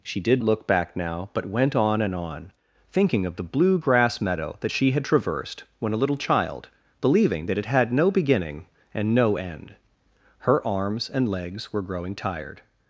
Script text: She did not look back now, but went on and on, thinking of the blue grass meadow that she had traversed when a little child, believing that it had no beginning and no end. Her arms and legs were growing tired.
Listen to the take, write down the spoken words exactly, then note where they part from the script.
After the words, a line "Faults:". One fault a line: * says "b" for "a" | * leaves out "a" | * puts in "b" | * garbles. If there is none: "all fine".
She did look back now, but went on and on, thinking of the blue grass meadow that she had traversed when a little child, believing that it had no beginning and no end. Her arms and legs were growing tired.
Faults:
* leaves out "not"